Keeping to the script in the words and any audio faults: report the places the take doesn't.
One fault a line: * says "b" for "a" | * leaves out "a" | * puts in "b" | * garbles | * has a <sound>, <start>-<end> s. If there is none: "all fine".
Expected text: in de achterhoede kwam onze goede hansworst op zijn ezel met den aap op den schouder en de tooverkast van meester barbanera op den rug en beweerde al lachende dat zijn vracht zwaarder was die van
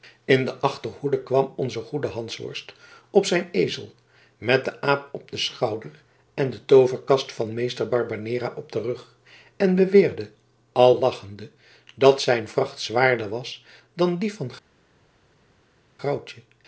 * puts in "dan"